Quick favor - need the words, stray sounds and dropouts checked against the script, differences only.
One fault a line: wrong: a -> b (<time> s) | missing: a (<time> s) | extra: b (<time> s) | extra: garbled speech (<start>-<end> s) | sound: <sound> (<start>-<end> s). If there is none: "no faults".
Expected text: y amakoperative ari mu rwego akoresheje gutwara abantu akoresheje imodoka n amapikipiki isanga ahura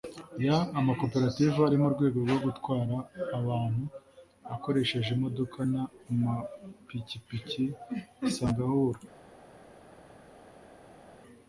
wrong: akoresheje -> rwo (2.2 s)